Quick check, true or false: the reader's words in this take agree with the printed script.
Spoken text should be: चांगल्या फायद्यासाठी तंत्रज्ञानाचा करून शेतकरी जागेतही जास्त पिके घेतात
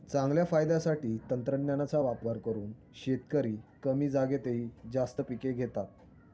false